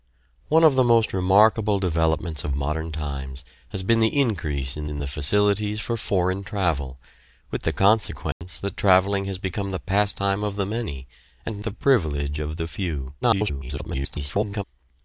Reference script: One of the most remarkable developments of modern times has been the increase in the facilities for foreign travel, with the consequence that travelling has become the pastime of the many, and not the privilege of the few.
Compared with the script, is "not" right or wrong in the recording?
wrong